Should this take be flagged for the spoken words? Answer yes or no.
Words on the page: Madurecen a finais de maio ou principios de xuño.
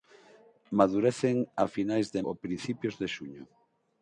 yes